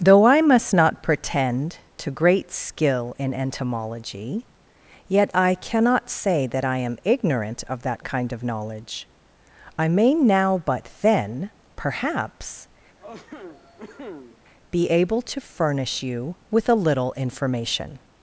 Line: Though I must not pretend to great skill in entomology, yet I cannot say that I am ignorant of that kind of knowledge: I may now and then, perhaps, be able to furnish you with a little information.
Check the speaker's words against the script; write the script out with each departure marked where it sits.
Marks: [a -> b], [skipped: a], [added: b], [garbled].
Though I must not pretend to great skill in entomology, yet I cannot say that I am ignorant of that kind of knowledge: I may now [and -> but] then, perhaps, be able to furnish you with a little information.